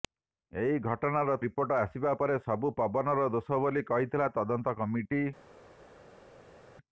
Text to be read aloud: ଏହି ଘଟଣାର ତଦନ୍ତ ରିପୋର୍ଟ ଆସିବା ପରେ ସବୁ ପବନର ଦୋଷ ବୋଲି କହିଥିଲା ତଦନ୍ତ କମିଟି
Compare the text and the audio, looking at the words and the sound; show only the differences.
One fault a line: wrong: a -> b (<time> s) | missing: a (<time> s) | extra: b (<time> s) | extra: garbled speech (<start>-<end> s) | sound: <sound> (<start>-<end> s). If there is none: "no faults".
missing: ତଦନ୍ତ (1.4 s)